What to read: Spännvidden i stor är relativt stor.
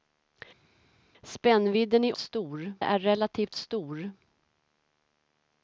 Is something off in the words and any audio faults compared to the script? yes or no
no